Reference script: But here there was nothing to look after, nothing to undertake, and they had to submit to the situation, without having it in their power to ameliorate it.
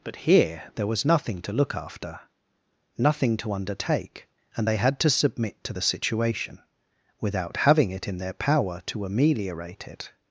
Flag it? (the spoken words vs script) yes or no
no